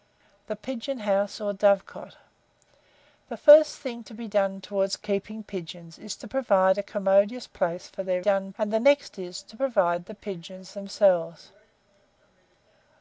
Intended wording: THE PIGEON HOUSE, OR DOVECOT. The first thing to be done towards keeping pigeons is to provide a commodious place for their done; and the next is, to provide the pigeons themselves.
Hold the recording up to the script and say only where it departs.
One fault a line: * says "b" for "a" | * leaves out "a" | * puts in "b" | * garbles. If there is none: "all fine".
all fine